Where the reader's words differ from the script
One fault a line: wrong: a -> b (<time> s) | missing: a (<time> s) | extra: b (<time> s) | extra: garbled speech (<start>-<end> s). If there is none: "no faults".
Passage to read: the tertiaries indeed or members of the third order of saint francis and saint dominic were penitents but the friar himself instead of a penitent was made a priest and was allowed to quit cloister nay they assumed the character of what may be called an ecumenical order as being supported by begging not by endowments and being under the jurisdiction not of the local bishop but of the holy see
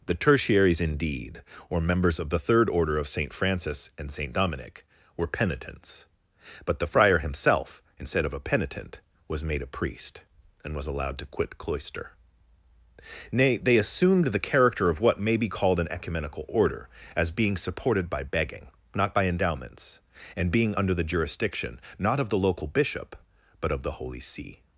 no faults